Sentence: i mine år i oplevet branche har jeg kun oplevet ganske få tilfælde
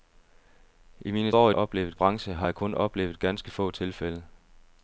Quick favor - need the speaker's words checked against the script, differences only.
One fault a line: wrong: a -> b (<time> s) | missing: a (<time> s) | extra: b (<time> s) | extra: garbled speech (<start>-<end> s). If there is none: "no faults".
no faults